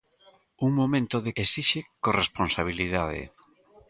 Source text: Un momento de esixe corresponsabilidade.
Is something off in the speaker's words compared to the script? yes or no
no